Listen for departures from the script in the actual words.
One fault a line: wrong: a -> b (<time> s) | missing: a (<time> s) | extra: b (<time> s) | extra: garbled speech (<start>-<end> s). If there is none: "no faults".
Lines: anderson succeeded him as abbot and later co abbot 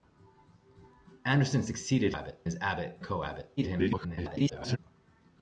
wrong: him -> abbot (2.1 s)
missing: and later (3.0 s)
extra: garbled speech (3.6-4.8 s)